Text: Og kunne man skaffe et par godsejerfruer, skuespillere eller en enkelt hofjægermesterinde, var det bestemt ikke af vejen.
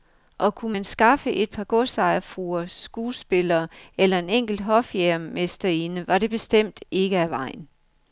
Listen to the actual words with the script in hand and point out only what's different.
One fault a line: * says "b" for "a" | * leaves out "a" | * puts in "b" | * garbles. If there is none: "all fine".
all fine